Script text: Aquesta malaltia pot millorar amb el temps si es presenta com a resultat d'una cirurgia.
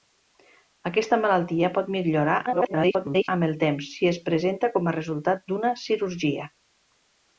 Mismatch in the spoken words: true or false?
true